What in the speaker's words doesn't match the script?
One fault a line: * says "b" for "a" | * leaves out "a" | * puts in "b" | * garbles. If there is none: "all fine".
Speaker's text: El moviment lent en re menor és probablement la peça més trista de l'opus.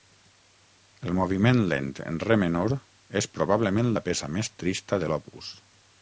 all fine